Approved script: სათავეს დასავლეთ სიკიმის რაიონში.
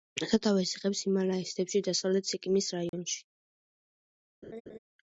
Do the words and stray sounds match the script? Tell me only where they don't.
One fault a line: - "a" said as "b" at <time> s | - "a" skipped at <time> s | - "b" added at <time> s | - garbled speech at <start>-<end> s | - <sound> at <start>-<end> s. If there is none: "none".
- "იღებს ჰიმალაის მთებში" added at 0.8 s
- dropout at 2.9-2.9 s
- laugh at 4.4-4.8 s